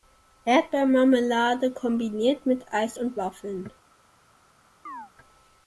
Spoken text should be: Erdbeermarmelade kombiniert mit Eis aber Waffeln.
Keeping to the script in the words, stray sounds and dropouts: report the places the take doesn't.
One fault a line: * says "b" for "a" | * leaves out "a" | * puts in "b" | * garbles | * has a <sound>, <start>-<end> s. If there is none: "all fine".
* says "und" for "aber"
* has a chirp, 4.9-5.1 s